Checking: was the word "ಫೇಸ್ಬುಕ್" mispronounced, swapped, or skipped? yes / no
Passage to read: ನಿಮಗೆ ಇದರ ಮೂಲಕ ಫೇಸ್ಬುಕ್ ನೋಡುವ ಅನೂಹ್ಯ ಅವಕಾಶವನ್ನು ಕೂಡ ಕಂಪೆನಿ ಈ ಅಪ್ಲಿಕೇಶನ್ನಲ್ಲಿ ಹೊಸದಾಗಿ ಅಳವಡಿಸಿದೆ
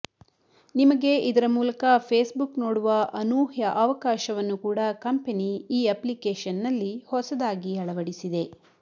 no